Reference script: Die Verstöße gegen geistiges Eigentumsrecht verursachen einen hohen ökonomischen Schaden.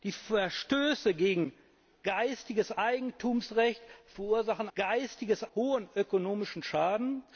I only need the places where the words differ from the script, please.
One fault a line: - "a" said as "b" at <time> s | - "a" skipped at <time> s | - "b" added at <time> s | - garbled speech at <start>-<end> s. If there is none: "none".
- "einen" said as "geistiges" at 4.7 s